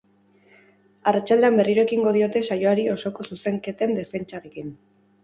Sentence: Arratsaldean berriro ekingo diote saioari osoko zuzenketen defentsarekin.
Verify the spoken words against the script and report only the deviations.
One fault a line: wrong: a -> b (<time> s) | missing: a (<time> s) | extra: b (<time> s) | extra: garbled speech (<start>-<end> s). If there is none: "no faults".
no faults